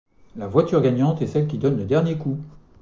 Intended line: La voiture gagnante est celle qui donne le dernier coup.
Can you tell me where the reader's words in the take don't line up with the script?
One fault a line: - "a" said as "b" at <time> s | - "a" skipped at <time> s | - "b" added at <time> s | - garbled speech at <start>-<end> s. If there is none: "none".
none